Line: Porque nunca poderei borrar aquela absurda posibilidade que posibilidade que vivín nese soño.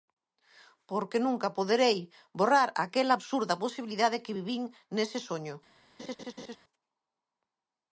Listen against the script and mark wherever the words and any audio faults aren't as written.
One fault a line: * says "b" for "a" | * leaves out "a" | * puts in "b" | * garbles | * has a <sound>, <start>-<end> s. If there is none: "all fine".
* leaves out "posibilidade que"
* has a laugh, 6.0-6.6 s